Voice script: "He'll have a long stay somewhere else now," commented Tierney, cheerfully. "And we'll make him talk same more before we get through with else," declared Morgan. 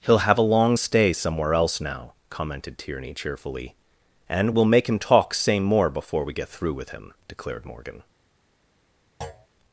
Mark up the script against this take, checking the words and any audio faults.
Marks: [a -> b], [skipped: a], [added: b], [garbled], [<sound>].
"He'll have a long stay somewhere else now," commented Tierney, cheerfully. "And we'll make him talk same more before we get through with [else," -> him] declared Morgan. [thud]